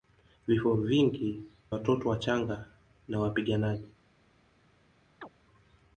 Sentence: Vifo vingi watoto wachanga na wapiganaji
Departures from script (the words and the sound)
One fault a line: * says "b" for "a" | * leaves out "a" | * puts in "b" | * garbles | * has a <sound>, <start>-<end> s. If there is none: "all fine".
* has a chirp, 5.2-5.3 s